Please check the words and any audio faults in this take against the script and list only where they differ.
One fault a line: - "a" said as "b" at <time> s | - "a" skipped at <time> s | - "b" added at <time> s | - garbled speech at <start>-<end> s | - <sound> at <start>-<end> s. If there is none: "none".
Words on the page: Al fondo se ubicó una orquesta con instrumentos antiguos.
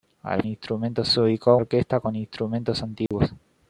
- "fondo" said as "instrumentos" at 0.5 s
- "una" skipped at 1.6 s
- dropout at 3.1-3.1 s